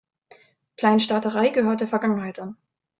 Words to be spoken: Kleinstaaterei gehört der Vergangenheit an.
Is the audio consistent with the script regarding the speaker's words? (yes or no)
yes